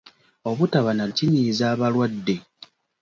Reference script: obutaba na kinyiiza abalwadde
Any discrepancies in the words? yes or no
no